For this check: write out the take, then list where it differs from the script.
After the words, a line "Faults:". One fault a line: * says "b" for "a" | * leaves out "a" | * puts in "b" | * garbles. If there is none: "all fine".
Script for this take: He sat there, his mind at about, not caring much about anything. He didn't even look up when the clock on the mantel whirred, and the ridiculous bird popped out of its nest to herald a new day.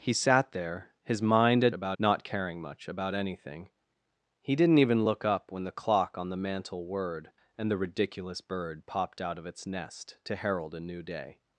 He sat there, his mind at about, not caring much about anything. He didn't even look up when the clock on the mantel whirred, and the ridiculous bird popped out of its nest to herald a new day.
Faults:
all fine